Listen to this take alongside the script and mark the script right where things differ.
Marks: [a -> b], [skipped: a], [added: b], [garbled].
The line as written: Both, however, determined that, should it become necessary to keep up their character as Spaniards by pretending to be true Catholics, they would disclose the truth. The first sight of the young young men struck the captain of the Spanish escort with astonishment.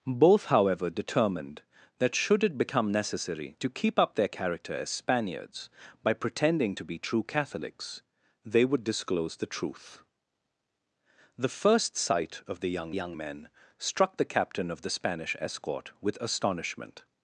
Both, however, determined that, should it become necessary to keep up their character as Spaniards by pretending to be true Catholics, they would disclose the truth. The first sight of the young young men struck the captain of the Spanish escort with astonishment.